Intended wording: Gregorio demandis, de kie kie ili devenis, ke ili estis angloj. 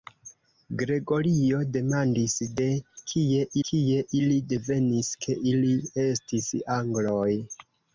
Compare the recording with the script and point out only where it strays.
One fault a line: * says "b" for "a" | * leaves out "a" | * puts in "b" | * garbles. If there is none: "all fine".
all fine